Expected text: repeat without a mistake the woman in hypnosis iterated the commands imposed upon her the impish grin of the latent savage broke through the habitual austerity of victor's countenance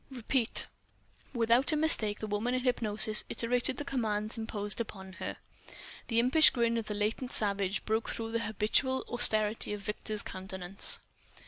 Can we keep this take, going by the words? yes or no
yes